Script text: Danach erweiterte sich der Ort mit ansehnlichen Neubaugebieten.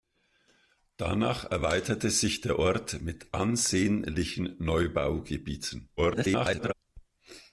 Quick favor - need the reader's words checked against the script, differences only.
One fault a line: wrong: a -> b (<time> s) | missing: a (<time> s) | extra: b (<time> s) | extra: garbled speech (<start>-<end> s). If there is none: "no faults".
extra: garbled speech (6.0-6.7 s)